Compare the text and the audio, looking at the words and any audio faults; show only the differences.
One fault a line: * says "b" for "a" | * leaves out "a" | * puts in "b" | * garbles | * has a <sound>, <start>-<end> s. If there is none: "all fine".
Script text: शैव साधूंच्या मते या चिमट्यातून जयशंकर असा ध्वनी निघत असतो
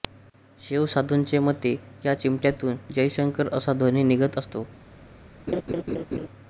* has a laugh, 5.5-6.3 s